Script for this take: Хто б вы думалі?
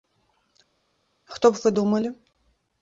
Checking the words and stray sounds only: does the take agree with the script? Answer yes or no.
yes